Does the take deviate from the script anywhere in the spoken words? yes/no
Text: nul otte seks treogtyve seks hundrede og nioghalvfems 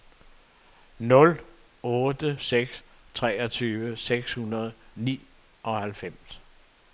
no